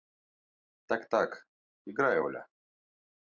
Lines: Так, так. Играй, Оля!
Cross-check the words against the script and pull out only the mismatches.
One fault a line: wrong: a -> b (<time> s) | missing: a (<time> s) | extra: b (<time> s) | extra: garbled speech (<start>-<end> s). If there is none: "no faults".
no faults